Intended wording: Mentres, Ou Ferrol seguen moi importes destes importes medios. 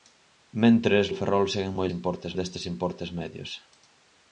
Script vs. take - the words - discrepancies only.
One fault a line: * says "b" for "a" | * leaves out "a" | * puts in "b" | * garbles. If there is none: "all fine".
all fine